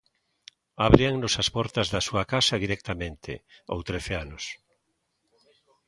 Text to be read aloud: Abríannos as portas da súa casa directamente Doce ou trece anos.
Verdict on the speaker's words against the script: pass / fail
fail